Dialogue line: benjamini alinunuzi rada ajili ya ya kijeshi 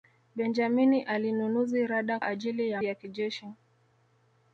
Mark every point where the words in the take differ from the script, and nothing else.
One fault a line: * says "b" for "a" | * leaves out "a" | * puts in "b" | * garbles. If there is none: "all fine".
all fine